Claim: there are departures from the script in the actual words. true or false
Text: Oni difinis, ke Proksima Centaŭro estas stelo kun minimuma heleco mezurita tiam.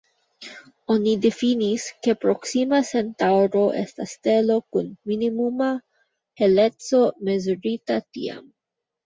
false